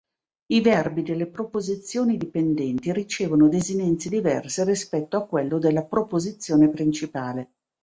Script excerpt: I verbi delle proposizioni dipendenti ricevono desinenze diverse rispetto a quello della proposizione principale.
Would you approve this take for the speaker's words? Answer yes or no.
yes